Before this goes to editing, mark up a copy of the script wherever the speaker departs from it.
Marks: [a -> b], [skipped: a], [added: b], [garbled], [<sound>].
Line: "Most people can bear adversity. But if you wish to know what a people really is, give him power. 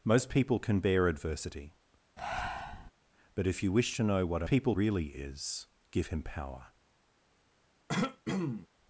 "Most people can bear adversity. [breath] But if you wish to know what a people really is, give him power. [throat clearing]